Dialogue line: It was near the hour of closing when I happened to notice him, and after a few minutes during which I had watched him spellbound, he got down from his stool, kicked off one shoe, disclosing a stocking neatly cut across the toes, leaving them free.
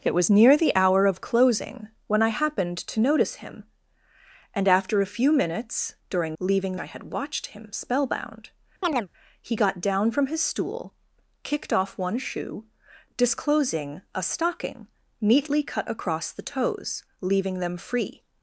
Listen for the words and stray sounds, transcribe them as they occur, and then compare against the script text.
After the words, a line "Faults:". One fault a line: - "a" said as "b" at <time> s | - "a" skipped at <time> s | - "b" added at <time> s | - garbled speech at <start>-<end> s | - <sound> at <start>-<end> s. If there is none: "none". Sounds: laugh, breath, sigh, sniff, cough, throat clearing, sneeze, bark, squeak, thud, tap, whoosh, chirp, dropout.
It was near the hour of closing when I happened to notice him, and after a few minutes during leaving I had watched him spellbound, he got down from his stool, kicked off one shoe, disclosing a stocking neatly cut across the toes, leaving them free.
Faults:
- "which" said as "leaving" at 6.4 s
- chirp at 8.8-9.1 s